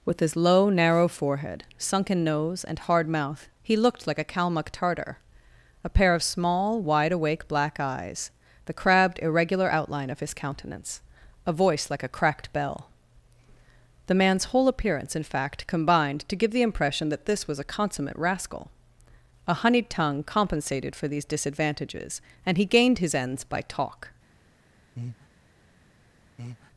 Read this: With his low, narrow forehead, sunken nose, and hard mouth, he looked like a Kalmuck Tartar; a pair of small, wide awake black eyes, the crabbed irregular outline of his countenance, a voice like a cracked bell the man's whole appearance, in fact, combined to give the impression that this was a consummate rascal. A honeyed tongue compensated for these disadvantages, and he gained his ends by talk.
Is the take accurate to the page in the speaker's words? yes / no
yes